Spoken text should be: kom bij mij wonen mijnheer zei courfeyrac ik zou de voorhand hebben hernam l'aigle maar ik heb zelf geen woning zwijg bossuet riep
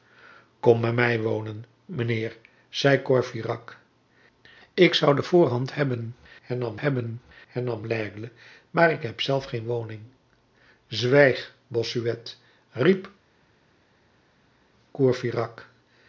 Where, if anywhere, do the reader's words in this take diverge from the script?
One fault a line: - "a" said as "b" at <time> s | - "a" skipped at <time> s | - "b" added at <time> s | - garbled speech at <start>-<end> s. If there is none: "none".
- "hebben hernam" added at 6.8 s